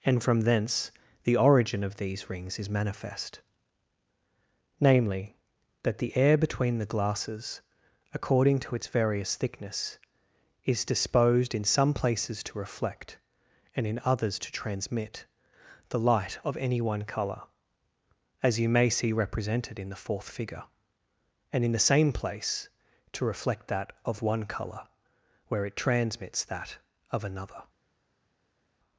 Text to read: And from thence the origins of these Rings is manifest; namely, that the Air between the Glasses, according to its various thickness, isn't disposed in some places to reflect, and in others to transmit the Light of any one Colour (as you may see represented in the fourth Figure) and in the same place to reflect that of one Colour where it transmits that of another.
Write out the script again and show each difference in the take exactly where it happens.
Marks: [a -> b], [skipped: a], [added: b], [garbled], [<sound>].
And from thence the [origins -> origin] of these Rings is manifest; namely, that the Air between the Glasses, according to its various thickness, [isn't -> is] disposed in some places to reflect, and in others to transmit the Light of any one Colour (as you may see represented in the fourth Figure) and in the same place to reflect that of one Colour where it transmits that of another.